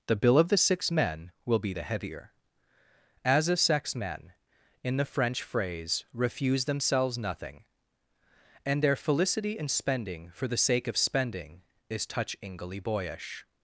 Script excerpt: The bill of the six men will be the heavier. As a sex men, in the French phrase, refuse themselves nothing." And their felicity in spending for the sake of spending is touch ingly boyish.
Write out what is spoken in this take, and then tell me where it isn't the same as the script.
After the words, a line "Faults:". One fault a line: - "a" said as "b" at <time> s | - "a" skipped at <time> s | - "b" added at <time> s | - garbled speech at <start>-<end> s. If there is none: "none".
The bill of the six men will be the heavier. As a sex men, in the French phrase, refuse themselves nothing." And their felicity in spending for the sake of spending is touch ingly boyish.
Faults:
none